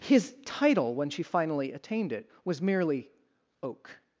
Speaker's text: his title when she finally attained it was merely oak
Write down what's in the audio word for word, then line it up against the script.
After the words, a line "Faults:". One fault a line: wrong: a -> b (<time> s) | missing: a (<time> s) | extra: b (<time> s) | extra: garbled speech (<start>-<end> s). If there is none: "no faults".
his title when she finally attained it was merely oak
Faults:
no faults